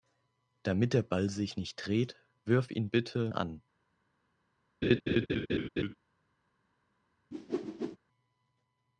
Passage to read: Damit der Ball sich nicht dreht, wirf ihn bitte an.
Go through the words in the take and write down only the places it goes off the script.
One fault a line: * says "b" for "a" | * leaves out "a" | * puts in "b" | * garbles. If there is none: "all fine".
all fine